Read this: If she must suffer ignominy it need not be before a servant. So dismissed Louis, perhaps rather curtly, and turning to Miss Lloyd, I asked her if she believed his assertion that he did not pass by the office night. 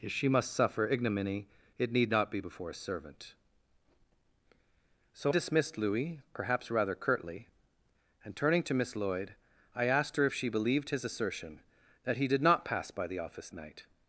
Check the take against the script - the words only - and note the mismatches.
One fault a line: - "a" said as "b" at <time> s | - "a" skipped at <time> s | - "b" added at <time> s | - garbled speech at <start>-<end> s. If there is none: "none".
none